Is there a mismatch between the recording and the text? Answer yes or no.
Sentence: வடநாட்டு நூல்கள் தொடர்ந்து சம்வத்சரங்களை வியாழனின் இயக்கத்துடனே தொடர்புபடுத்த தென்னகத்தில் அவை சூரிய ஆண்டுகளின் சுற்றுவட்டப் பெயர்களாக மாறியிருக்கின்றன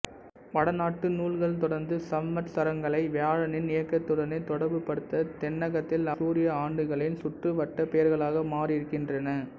yes